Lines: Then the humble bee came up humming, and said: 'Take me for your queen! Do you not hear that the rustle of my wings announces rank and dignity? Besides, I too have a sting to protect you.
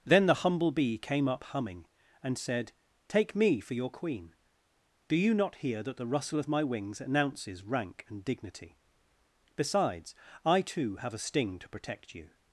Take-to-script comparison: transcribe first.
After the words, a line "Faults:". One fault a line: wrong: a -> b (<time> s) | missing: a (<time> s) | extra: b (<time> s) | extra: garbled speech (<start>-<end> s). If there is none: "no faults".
Then the humble bee came up humming, and said: 'Take me for your queen! Do you not hear that the rustle of my wings announces rank and dignity? Besides, I too have a sting to protect you.
Faults:
no faults